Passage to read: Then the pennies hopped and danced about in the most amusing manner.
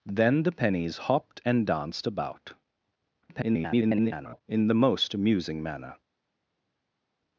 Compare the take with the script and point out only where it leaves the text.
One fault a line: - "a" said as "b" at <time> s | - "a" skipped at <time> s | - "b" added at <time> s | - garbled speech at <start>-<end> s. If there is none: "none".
- garbled speech at 3.2-4.4 s